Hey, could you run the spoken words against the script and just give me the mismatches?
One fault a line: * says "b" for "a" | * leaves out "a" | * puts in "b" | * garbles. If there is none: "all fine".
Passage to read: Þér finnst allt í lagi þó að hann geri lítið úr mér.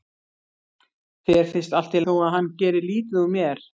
* leaves out "lagi"